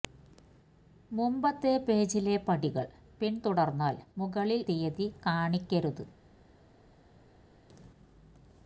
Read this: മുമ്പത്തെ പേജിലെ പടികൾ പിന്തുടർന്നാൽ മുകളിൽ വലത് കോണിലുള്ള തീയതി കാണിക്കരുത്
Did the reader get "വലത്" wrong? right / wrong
wrong